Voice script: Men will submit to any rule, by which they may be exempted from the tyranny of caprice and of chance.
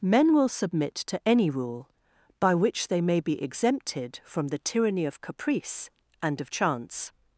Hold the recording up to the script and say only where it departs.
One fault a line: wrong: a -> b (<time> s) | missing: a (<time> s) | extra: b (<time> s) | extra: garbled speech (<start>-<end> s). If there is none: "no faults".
no faults